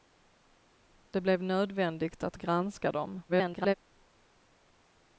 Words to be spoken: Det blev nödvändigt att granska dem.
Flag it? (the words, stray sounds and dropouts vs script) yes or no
yes